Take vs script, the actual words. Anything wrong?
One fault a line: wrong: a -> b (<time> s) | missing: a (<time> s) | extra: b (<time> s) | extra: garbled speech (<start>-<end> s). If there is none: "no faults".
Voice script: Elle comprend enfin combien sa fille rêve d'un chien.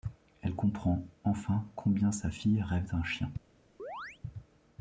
no faults